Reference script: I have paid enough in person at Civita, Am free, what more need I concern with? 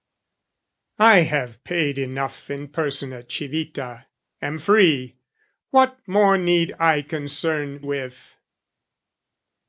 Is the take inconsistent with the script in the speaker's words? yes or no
no